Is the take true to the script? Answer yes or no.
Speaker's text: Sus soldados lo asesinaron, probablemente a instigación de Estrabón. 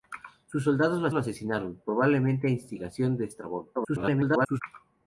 no